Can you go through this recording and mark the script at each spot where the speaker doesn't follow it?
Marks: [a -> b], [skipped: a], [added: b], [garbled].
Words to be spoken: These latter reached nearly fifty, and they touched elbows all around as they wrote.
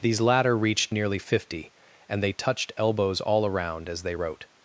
These latter reached nearly fifty, and they touched elbows all around as they wrote.